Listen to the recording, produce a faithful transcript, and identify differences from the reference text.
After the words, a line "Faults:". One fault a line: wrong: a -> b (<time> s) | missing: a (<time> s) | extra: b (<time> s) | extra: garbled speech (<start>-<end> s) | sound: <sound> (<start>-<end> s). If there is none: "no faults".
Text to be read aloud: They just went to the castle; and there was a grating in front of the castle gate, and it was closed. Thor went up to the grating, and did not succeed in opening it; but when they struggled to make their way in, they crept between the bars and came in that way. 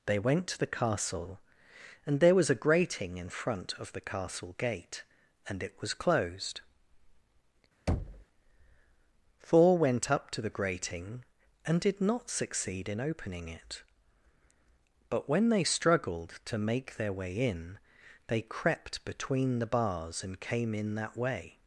They went to the castle; and there was a grating in front of the castle gate, and it was closed. Thor went up to the grating, and did not succeed in opening it; but when they struggled to make their way in, they crept between the bars and came in that way.
Faults:
missing: just (0.2 s)
sound: thud (7.9-8.2 s)